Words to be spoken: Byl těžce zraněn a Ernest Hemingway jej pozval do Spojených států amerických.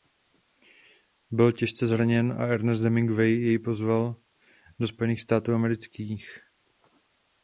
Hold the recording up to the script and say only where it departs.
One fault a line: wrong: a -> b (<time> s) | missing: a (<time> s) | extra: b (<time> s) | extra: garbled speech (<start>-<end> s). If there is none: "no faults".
no faults